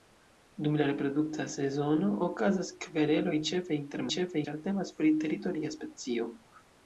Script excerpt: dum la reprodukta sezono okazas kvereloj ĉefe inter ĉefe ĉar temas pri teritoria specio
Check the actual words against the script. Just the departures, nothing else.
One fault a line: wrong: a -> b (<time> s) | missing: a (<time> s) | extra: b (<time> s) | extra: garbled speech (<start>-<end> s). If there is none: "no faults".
no faults